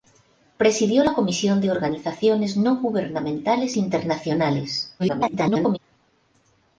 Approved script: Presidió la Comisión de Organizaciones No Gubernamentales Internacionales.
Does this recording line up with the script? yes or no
no